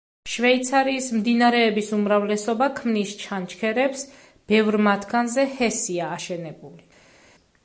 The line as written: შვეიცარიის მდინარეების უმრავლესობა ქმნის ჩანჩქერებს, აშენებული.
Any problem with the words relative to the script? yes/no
yes